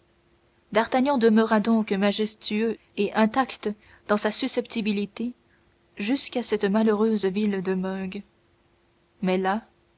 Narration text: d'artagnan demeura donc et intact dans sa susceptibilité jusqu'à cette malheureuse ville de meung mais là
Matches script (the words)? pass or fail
fail